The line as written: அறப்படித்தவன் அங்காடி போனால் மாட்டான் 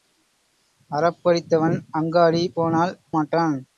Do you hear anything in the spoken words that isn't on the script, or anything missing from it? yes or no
no